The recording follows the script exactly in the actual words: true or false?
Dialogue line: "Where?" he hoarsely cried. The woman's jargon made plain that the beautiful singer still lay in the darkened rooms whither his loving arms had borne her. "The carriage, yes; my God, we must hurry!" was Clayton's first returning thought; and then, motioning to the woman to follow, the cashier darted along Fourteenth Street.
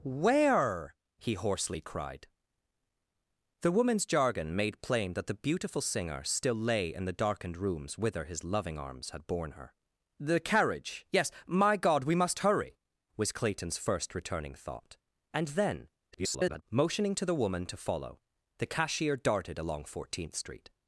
false